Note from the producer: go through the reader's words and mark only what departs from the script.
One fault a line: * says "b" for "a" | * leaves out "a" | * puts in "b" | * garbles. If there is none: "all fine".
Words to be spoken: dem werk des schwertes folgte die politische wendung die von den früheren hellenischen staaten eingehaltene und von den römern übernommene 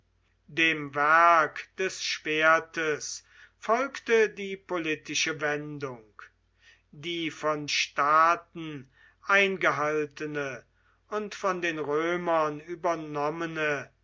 * leaves out "den früheren hellenischen"